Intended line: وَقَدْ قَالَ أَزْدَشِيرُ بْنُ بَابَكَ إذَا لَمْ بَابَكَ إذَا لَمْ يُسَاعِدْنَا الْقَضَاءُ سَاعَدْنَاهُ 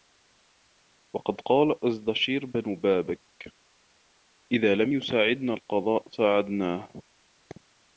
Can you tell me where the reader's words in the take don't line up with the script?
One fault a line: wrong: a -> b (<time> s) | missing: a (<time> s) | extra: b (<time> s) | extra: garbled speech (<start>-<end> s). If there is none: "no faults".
missing: بَابَكَ إذَا لَمْ (4.9 s)